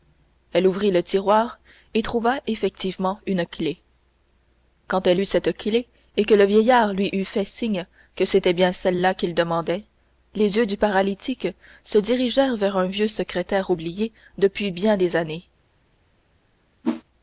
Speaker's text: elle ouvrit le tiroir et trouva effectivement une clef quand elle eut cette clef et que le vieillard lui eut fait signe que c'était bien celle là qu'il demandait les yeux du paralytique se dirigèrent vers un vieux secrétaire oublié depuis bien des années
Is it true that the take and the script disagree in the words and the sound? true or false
true